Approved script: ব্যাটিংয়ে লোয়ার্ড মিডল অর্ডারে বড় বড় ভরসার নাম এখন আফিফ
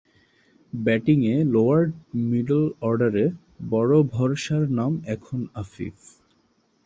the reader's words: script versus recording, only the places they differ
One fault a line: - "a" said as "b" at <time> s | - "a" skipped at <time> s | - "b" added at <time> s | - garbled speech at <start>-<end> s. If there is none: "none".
- "বড়" skipped at 3.9 s